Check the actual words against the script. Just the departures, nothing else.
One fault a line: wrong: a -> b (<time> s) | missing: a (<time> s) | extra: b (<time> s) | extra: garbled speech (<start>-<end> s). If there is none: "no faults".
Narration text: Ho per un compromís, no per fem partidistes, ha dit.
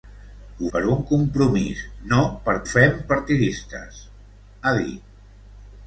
no faults